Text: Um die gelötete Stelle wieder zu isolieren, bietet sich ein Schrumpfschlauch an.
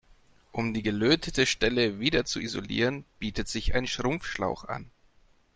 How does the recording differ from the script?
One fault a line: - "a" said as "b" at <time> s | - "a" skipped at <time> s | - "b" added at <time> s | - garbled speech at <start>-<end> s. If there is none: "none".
none